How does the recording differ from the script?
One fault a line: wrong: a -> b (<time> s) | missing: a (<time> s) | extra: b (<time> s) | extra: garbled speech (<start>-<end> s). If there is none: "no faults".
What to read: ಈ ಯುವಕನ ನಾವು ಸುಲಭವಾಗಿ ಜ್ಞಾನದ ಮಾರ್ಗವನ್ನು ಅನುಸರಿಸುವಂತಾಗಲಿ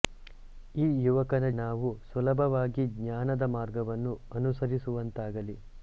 no faults